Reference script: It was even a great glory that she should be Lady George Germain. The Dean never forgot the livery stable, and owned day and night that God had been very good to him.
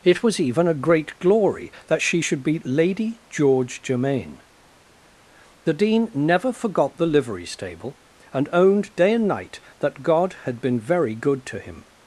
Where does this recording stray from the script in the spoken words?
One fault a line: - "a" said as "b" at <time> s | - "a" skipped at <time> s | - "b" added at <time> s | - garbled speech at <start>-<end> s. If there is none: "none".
none